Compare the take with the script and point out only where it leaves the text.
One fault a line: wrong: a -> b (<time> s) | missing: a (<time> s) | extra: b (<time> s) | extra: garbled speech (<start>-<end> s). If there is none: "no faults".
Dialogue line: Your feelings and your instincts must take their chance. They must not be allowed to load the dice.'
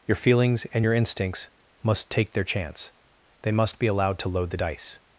missing: not (3.8 s)